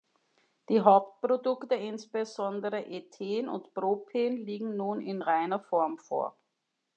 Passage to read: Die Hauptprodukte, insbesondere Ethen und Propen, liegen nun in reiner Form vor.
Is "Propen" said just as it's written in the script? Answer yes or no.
yes